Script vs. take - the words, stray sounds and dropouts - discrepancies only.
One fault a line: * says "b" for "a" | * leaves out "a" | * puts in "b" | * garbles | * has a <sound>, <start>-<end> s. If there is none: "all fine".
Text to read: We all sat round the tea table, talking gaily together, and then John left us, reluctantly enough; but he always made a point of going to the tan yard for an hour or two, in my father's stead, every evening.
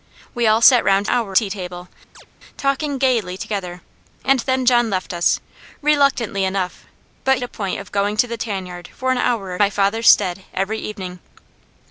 * says "hour" for "the"
* has a chirp, 2.1-2.3 s
* leaves out "he always made"
* leaves out "two in"